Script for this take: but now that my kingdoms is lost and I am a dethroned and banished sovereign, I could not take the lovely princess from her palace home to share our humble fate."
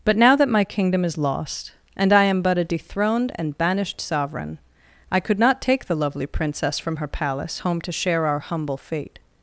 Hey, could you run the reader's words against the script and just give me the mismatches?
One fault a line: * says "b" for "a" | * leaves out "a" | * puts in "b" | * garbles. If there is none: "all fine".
* says "kingdom" for "kingdoms"
* puts in "but"